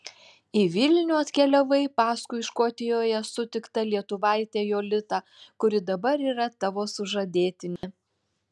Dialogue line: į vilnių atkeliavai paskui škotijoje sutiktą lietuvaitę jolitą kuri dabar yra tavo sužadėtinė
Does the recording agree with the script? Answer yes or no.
yes